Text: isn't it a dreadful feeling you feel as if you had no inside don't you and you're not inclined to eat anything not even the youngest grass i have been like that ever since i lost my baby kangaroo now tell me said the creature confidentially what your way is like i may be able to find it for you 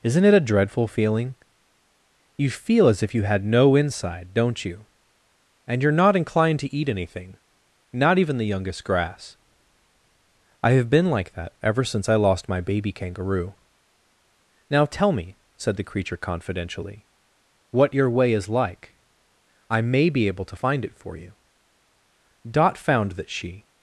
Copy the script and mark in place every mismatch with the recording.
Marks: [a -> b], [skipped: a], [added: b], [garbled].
isn't it a dreadful feeling you feel as if you had no inside don't you and you're not inclined to eat anything not even the youngest grass i have been like that ever since i lost my baby kangaroo now tell me said the creature confidentially what your way is like i may be able to find it for you [added: dot found that she]